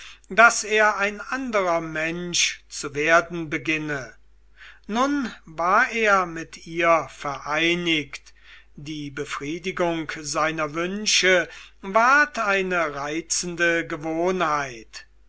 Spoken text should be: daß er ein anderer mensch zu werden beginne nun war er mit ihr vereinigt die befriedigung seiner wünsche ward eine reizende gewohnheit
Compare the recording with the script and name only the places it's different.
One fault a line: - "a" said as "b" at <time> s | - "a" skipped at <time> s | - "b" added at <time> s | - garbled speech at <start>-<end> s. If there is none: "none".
none